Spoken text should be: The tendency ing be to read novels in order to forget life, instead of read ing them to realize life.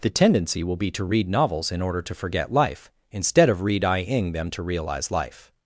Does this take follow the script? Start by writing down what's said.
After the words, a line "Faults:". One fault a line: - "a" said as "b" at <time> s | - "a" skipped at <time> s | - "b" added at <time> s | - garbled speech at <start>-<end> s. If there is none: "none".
The tendency will be to read novels in order to forget life, instead of read ing them to realize life.
Faults:
- "ing" said as "will" at 0.6 s